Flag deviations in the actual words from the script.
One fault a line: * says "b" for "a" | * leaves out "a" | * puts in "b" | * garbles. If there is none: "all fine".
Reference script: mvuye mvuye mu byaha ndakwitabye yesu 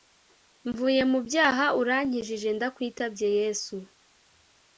* leaves out "mvuye"
* puts in "urankijije"